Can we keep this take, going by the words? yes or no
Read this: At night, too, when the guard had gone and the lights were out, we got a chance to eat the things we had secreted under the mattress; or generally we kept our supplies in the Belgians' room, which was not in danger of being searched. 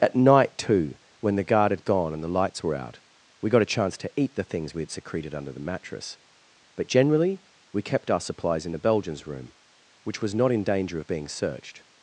no